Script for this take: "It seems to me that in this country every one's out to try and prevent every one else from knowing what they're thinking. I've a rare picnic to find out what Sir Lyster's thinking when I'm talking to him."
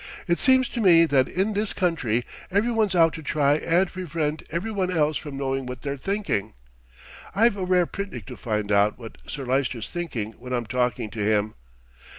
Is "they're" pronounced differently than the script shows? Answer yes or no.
no